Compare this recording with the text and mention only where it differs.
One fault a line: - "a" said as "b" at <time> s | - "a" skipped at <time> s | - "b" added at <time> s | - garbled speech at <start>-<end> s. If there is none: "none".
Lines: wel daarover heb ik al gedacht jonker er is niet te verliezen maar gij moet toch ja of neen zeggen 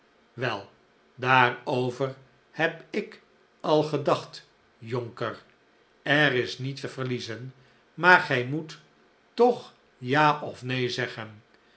none